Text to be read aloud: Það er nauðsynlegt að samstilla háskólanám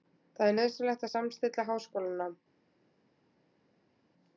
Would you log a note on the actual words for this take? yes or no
no